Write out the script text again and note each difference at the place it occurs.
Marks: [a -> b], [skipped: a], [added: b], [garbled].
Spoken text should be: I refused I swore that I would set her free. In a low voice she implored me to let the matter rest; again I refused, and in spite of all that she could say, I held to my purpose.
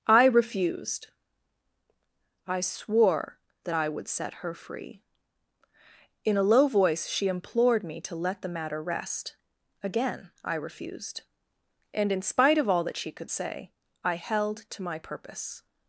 I refused I swore that I would set her free. In a low voice she implored me to let the matter rest; again I refused, and in spite of all that she could say, I held to my purpose.